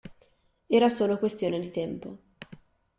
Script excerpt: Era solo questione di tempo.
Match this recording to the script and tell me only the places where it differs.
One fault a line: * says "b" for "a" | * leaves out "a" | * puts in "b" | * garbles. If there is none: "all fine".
all fine